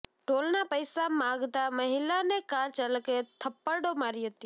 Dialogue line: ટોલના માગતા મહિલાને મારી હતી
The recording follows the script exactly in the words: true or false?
false